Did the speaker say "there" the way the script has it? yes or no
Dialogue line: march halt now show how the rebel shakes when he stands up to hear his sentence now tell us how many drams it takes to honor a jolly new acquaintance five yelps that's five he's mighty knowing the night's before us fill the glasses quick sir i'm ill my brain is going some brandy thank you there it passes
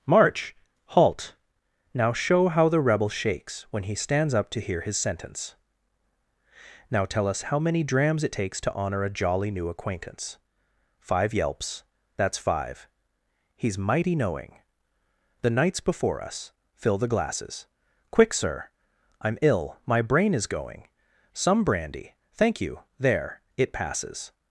yes